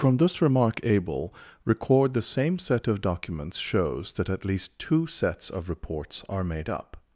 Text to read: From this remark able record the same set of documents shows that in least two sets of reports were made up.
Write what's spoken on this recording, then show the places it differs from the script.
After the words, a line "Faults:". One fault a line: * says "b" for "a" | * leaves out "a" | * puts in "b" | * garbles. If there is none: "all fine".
From this remark able record the same set of documents shows that at least two sets of reports are made up.
Faults:
* says "at" for "in"
* says "are" for "were"